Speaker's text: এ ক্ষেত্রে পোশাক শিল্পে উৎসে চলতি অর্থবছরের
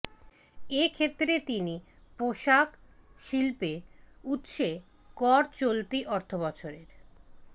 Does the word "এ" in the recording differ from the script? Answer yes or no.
no